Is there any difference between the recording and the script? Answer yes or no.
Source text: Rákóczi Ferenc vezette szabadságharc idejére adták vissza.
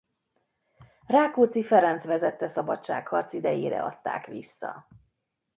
no